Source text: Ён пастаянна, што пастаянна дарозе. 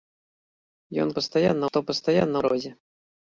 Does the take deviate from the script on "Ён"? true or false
false